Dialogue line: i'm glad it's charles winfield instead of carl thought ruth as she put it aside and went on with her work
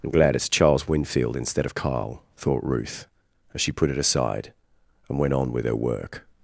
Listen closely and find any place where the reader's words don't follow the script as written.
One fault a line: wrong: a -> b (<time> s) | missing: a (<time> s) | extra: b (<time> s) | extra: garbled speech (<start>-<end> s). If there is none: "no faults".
no faults